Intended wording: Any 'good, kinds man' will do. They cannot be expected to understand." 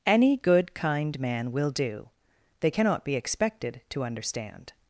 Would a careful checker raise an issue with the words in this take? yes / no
yes